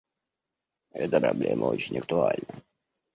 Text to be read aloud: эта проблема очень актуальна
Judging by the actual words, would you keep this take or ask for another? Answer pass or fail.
pass